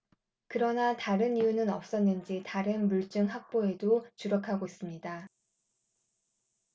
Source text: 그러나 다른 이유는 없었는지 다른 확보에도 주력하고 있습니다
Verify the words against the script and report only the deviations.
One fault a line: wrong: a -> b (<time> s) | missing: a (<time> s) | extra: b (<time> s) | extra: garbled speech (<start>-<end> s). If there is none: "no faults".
extra: 물증 (2.9 s)